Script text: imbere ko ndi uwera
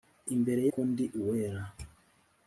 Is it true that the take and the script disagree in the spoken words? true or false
false